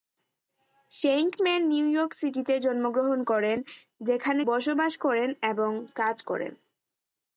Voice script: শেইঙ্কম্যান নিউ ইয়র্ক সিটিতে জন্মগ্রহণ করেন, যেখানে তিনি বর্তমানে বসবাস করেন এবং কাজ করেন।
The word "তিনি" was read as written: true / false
false